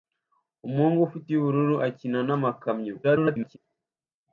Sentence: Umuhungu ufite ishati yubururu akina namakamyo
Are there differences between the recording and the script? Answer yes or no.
yes